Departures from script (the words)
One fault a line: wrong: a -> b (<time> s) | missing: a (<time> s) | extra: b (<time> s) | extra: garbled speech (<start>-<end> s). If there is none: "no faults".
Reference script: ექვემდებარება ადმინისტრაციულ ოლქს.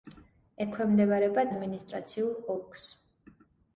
no faults